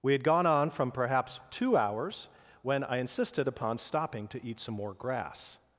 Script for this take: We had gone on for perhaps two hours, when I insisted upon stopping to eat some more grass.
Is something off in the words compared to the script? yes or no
yes